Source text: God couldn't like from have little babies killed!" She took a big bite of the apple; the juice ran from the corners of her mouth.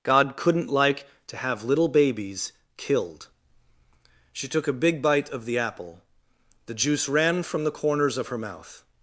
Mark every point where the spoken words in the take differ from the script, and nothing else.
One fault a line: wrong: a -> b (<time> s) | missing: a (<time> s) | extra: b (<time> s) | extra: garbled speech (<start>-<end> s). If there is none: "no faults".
wrong: from -> to (1.3 s)